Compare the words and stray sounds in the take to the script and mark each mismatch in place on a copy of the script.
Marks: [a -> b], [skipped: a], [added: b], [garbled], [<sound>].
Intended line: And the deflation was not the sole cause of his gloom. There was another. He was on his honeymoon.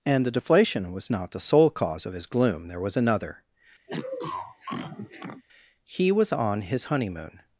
And the deflation was not the sole cause of his gloom. There was another. [sniff] He was on his honeymoon.